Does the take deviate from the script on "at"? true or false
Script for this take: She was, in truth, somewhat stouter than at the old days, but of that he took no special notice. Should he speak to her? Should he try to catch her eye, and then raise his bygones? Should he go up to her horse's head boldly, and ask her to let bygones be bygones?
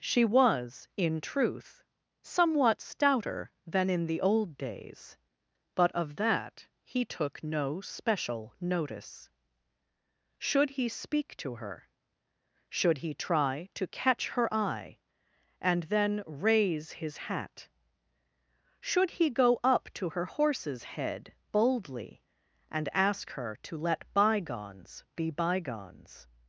true